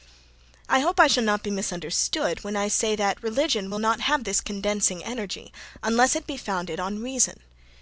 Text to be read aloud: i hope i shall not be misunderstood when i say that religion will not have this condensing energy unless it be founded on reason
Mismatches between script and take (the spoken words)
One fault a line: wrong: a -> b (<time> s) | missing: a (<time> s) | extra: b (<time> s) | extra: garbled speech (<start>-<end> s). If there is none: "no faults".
no faults